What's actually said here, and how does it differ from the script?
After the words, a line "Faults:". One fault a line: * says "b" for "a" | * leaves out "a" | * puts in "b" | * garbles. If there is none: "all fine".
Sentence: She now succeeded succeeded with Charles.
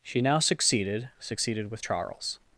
She now succeeded succeeded with Charles.
Faults:
all fine